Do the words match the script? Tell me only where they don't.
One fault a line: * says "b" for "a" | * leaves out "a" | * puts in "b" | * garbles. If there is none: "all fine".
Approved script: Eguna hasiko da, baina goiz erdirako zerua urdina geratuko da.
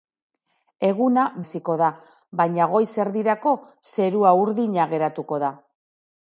all fine